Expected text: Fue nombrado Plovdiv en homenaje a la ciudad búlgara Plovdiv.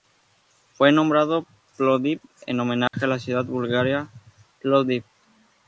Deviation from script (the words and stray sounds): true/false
true